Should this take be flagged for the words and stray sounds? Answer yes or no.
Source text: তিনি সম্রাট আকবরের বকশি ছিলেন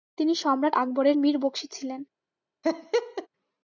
yes